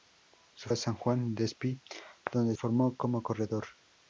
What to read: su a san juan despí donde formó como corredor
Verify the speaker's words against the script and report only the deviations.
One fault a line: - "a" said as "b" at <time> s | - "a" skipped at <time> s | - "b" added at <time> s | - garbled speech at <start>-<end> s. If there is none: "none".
none